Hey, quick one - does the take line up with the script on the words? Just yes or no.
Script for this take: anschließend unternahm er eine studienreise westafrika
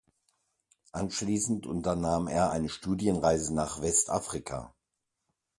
no